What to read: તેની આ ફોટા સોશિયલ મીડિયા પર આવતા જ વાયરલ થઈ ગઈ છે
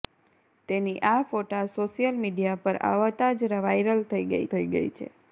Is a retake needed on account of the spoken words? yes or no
yes